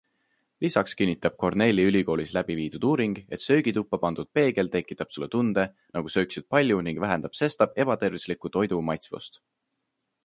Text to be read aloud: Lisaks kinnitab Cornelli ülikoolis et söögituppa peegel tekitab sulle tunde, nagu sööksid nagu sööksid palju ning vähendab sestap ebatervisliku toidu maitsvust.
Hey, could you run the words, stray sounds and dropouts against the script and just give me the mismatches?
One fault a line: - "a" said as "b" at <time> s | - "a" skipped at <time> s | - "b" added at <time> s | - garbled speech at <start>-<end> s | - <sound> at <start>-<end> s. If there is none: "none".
- "läbi viidud uuring" added at 2.4 s
- "pandud" added at 4.0 s
- "nagu sööksid" skipped at 6.5 s